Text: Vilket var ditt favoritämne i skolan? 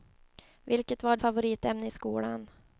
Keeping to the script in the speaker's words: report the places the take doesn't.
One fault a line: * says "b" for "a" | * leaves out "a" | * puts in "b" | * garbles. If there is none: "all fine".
* leaves out "ditt"